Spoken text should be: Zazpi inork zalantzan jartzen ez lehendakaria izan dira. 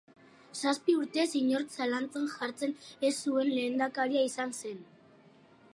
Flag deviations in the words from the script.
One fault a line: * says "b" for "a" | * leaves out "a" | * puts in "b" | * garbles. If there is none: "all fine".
* puts in "urtez"
* puts in "zuen"
* says "zen" for "dira"